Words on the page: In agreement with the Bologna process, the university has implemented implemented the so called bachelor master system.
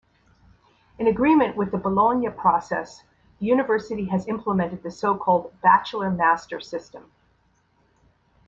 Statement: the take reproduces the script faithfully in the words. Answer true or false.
false